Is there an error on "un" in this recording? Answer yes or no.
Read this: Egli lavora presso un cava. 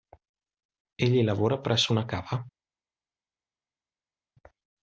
yes